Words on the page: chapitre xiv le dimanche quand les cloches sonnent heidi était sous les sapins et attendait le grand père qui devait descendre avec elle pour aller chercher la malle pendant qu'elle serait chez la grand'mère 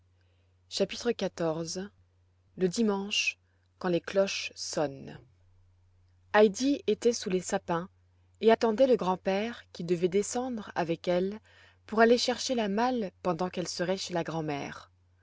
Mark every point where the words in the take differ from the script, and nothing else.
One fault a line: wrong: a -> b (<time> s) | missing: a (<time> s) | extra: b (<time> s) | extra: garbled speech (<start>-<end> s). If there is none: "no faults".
no faults